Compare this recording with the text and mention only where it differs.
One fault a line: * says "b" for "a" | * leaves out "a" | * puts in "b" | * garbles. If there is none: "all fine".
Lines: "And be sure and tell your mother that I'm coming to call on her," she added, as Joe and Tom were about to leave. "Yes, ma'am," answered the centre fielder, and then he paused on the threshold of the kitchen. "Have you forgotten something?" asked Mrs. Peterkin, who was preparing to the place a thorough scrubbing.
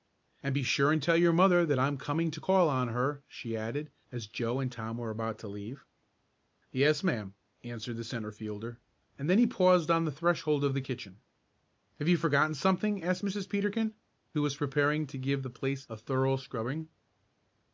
* puts in "give"